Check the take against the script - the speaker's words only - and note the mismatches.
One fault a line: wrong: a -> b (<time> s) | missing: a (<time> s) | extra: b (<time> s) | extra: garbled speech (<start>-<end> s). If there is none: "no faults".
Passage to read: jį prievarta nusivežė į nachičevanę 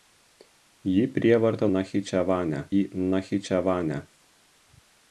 wrong: nusivežė -> nachičevanę (1.8 s)